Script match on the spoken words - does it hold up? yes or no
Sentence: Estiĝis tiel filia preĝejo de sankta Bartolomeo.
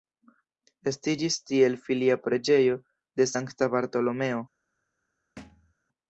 yes